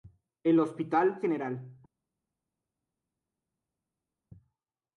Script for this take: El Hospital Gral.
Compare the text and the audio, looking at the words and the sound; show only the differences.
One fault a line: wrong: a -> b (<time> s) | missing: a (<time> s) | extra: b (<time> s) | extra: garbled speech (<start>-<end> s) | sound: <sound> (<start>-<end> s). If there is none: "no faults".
no faults